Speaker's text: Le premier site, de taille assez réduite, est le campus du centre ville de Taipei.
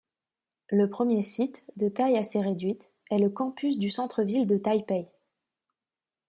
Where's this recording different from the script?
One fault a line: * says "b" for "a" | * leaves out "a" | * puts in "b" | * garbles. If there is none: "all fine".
all fine